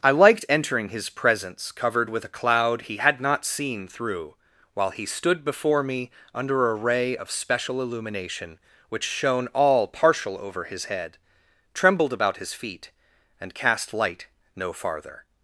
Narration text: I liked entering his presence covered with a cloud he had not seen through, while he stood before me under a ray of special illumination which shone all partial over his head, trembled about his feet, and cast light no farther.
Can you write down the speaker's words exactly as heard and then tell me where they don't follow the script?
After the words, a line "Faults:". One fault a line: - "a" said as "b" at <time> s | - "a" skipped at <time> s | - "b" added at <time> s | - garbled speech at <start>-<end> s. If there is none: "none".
I liked entering his presence covered with a cloud he had not seen through, while he stood before me under a ray of special illumination which shone all partial over his head, trembled about his feet, and cast light no farther.
Faults:
none